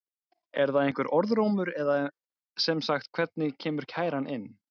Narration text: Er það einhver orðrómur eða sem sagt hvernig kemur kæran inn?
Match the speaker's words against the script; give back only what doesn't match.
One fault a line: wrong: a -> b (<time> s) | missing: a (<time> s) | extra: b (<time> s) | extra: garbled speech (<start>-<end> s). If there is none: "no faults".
no faults